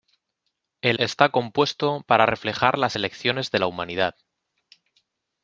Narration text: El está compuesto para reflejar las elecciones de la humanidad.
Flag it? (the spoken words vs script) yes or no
no